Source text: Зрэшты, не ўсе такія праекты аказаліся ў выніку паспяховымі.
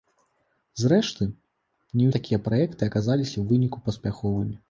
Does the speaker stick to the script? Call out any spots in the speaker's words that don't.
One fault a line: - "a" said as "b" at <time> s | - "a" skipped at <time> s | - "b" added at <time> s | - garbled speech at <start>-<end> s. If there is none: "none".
- "ўсе" skipped at 2.1 s